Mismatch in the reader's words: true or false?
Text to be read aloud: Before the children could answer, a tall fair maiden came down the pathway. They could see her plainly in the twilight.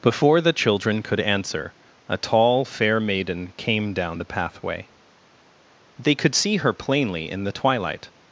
false